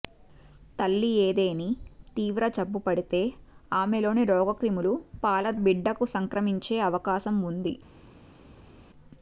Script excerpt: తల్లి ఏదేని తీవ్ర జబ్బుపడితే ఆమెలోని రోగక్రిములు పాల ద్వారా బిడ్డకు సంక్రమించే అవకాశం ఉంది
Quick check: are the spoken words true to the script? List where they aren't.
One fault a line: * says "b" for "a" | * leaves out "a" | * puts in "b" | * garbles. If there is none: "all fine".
* leaves out "ద్వారా"